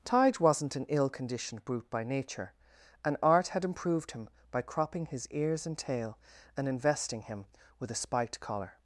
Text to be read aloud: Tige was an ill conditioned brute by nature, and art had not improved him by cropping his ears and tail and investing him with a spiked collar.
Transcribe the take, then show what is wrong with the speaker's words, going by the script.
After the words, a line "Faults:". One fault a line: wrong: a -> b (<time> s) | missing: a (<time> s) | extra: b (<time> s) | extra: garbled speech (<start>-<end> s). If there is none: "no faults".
Tige wasn't an ill conditioned brute by nature, and art had improved him by cropping his ears and tail and investing him with a spiked collar.
Faults:
wrong: was -> wasn't (0.4 s)
missing: not (3.6 s)